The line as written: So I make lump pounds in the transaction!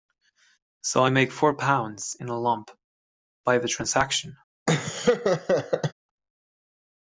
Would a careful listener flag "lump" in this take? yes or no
yes